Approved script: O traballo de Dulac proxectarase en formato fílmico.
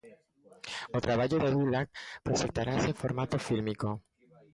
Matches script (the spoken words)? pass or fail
pass